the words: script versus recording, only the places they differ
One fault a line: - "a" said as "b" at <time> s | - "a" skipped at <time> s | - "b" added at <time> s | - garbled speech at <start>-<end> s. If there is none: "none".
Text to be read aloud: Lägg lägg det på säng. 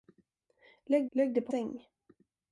none